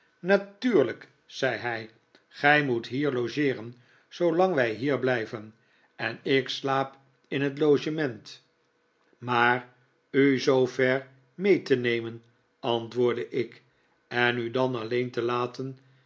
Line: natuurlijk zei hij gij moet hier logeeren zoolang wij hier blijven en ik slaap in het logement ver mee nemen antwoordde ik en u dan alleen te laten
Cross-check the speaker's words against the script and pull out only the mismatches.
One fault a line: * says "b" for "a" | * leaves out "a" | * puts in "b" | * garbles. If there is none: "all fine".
* puts in "maar u zoo"
* puts in "te"